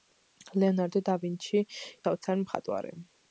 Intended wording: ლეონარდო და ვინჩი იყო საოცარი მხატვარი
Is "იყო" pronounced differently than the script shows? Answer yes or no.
yes